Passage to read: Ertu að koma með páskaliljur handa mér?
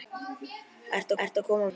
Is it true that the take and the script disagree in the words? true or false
true